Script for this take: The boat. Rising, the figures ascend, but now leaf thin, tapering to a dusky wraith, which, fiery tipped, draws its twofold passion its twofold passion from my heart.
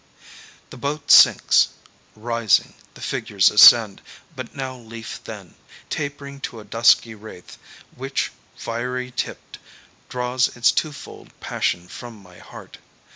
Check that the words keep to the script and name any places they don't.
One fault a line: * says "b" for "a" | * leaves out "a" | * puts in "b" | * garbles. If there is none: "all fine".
* puts in "sinks"
* leaves out "its twofold passion"